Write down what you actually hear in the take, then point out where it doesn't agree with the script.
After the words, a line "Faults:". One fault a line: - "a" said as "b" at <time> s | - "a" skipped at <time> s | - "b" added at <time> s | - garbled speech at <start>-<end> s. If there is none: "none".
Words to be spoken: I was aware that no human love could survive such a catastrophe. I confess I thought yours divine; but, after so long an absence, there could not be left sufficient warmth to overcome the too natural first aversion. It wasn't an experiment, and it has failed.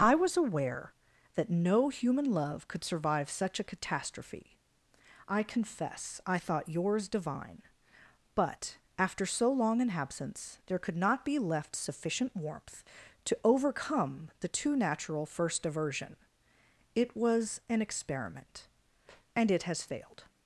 I was aware that no human love could survive such a catastrophe. I confess I thought yours divine; but, after so long an absence, there could not be left sufficient warmth to overcome the too natural first aversion. It was an experiment, and it has failed.
Faults:
- "wasn't" said as "was" at 17.2 s